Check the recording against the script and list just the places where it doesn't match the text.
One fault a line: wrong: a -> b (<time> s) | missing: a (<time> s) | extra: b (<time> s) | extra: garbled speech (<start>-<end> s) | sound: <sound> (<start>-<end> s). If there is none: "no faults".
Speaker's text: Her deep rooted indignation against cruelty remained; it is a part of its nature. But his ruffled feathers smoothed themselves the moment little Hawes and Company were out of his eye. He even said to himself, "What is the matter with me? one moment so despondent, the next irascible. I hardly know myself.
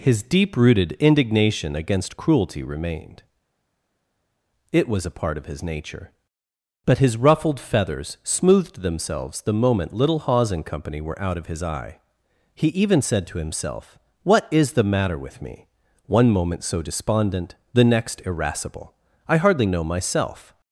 wrong: Her -> His (0.0 s)
wrong: is -> was (4.9 s)
wrong: its -> his (5.4 s)